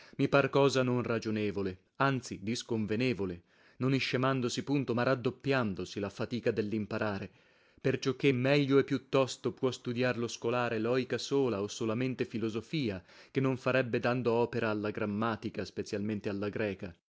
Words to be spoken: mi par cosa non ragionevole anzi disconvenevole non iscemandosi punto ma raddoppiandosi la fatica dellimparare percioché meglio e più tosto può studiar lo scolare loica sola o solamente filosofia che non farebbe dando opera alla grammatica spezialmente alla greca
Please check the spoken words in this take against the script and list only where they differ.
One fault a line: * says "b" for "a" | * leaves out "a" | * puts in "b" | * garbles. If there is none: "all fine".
all fine